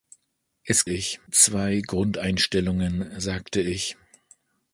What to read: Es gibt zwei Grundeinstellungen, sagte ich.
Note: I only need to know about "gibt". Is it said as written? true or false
false